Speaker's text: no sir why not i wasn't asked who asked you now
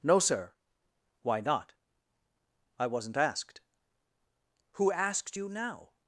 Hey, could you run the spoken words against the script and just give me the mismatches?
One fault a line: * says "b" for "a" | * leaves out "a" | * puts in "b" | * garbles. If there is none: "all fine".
all fine